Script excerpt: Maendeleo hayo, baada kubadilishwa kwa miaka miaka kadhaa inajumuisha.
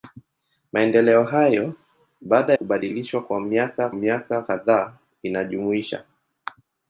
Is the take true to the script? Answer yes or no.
yes